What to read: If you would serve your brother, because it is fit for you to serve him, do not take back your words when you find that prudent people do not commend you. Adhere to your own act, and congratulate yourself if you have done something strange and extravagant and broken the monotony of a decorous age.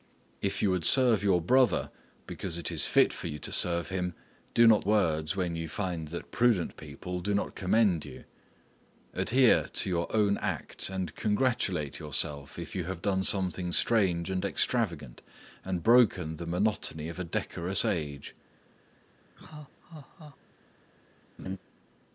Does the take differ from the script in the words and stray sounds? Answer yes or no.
yes